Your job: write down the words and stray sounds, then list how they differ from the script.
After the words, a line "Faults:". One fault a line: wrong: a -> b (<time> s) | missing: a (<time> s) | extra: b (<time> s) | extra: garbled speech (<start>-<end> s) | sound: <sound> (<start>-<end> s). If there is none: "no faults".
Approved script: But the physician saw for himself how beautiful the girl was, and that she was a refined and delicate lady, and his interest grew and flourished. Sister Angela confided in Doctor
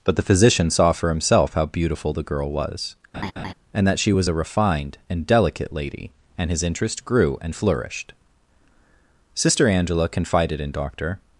But the physician saw for himself how beautiful the girl was, and that she was a refined and delicate lady, and his interest grew and flourished. Sister Angela confided in Doctor
Faults:
sound: laugh (3.1-3.5 s)